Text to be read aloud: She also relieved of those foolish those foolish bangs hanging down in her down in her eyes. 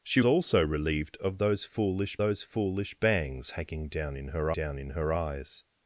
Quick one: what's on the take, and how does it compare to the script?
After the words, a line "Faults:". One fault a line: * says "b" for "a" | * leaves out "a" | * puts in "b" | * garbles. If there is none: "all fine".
She also relieved of those foolish those foolish bangs hanging down in her down in her eyes.
Faults:
all fine